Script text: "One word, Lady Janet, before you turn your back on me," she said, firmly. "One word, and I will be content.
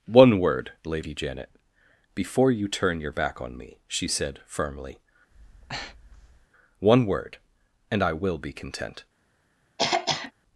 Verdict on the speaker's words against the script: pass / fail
pass